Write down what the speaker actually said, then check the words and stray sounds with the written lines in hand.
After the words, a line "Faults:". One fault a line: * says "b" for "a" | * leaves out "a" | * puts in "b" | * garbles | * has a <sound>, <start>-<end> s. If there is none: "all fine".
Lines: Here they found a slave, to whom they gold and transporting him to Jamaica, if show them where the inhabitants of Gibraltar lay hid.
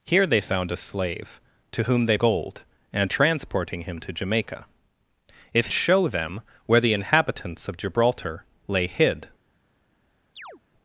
Here they found a slave, to whom they gold and transporting him to Jamaica, if show them where the inhabitants of Gibraltar lay hid.
Faults:
* has a chirp, 10.4-10.6 s